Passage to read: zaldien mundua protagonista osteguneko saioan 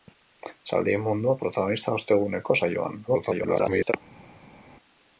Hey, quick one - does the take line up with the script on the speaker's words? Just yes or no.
no